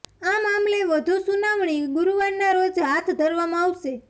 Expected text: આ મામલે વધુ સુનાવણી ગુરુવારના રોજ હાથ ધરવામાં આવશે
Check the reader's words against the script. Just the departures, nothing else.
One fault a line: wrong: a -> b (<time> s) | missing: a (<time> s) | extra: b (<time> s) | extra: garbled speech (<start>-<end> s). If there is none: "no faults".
no faults